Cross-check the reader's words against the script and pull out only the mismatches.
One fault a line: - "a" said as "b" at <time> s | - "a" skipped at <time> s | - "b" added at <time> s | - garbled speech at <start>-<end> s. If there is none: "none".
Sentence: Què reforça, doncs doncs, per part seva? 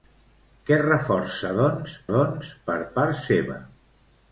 none